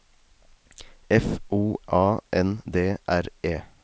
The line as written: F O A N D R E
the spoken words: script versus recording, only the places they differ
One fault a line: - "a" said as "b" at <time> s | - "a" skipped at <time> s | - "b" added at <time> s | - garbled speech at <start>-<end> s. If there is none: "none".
none